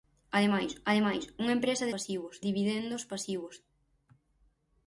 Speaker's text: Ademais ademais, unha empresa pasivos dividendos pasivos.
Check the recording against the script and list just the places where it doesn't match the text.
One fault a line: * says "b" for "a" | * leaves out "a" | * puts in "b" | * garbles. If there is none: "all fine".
all fine